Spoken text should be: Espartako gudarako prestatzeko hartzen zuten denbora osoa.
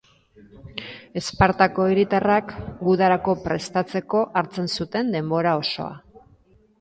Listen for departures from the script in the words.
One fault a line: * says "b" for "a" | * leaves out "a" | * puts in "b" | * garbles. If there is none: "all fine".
* puts in "hiritarrak"